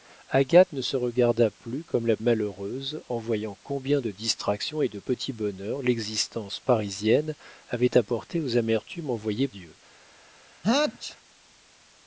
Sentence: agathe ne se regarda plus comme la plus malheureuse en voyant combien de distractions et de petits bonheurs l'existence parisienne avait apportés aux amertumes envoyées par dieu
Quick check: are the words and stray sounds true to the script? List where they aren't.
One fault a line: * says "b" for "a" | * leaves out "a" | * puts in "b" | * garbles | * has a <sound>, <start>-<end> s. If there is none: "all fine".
* leaves out "plus"
* leaves out "par"
* has a sneeze, 10.6-11.2 s